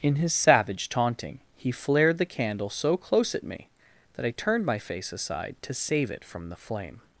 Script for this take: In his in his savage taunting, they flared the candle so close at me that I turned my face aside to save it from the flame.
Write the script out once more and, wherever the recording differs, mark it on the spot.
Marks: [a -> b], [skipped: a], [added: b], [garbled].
In his [skipped: in his] savage taunting, [they -> he] flared the candle so close at me that I turned my face aside to save it from the flame.